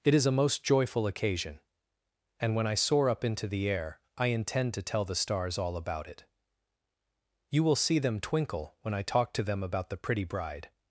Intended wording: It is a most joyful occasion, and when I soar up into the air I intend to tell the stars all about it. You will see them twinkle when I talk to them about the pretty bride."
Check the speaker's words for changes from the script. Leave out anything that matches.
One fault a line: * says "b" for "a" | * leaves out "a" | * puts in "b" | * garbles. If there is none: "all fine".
all fine